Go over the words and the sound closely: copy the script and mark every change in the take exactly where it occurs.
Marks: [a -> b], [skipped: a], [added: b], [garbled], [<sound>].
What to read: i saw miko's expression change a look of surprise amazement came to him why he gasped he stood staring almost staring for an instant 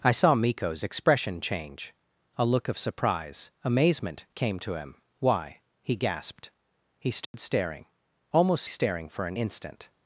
i saw miko's expression change a look of surprise amazement came to him why he gasped he stood [dropout] staring almost staring for an instant